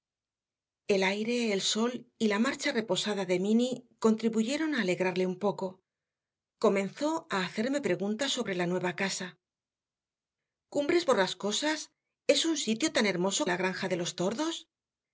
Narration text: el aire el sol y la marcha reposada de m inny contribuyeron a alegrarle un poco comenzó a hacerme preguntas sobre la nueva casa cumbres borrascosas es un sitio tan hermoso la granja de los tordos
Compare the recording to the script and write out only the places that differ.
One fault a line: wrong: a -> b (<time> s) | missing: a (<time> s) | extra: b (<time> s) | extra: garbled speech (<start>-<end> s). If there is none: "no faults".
no faults